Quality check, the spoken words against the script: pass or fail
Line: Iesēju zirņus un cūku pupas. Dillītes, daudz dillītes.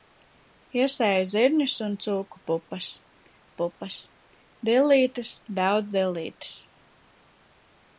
fail